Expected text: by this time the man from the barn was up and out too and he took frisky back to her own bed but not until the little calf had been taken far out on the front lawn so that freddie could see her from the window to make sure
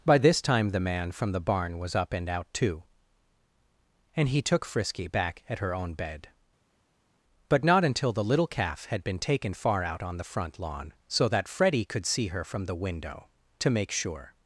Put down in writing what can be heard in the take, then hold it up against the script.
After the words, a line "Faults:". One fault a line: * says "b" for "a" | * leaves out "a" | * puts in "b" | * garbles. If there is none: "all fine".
by this time the man from the barn was up and out too and he took frisky back at her own bed but not until the little calf had been taken far out on the front lawn so that freddie could see her from the window to make sure
Faults:
* says "at" for "to"